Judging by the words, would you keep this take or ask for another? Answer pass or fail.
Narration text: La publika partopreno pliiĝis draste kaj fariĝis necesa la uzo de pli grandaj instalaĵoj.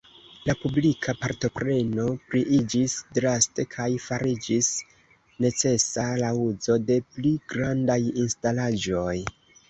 pass